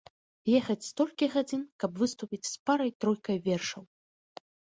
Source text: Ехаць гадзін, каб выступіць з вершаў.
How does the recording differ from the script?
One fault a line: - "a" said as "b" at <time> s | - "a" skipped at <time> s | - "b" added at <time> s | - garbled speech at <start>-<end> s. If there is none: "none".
- "столькі" added at 0.9 s
- "парай тройкай" added at 2.7 s